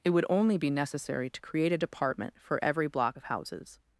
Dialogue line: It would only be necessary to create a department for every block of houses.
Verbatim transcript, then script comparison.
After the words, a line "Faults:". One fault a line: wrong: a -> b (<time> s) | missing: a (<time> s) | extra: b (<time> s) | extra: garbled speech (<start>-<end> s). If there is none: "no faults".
It would only be necessary to create a department for every block of houses.
Faults:
no faults